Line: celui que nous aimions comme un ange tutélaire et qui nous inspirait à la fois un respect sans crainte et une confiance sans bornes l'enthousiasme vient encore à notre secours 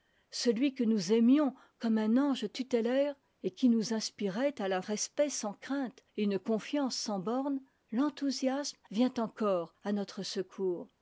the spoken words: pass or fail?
fail